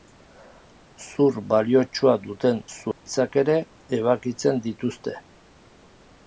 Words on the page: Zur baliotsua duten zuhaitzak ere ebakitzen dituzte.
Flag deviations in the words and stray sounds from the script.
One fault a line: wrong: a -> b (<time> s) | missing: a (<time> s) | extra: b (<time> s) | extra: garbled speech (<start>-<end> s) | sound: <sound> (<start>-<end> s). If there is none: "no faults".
sound: dropout (2.9-3.1 s)